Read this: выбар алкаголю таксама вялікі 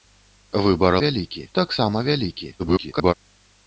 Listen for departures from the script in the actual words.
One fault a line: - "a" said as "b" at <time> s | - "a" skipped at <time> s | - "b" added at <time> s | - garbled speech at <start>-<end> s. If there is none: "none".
- "алкаголю" said as "вялікі" at 1.0 s
- garbled speech at 2.6-3.1 s